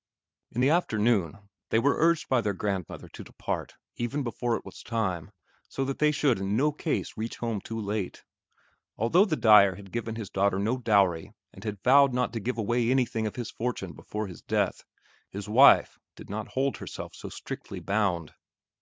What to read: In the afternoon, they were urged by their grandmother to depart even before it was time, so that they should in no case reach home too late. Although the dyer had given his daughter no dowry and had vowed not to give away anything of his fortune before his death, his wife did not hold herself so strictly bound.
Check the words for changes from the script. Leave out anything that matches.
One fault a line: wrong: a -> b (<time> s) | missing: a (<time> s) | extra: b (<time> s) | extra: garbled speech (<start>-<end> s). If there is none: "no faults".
no faults